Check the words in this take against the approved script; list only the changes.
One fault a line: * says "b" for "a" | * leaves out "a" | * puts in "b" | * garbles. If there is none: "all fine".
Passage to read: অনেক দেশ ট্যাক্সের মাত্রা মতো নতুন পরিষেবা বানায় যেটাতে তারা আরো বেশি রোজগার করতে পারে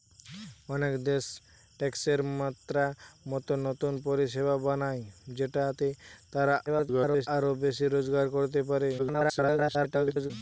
* garbles
* garbles